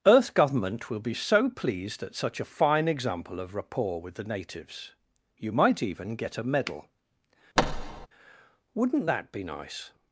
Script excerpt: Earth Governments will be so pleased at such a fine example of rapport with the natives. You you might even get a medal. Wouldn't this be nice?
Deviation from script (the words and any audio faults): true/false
true